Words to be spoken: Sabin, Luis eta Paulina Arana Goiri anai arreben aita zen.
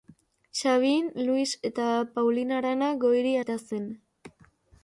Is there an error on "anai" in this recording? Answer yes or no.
yes